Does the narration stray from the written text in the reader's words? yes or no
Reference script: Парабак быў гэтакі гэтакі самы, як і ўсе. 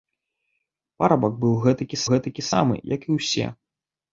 no